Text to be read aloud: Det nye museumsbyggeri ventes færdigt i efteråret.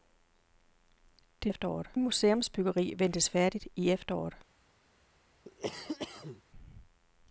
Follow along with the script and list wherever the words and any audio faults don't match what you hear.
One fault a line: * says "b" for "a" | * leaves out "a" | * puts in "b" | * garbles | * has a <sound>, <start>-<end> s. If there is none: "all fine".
* says "efteråret" for "nye"
* has a cough, 5.5-6.4 s